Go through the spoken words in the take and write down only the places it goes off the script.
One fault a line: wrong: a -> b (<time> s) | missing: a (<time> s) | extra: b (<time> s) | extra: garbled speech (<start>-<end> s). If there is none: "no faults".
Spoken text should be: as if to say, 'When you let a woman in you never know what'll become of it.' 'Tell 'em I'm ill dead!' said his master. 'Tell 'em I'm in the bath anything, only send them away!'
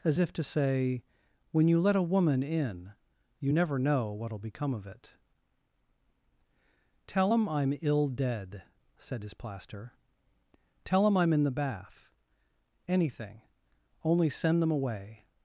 wrong: master -> plaster (9.3 s)